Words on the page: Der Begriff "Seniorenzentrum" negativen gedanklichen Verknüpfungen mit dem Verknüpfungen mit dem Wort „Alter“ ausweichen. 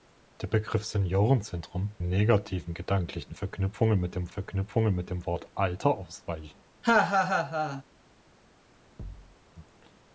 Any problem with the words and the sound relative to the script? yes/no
yes